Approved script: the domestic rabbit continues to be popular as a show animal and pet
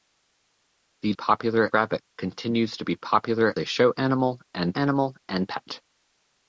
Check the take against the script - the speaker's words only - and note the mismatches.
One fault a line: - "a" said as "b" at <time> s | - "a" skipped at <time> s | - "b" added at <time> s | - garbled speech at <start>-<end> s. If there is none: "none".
- "domestic" said as "popular" at 1.1 s
- "as" skipped at 3.5 s
- "animal and" added at 4.7 s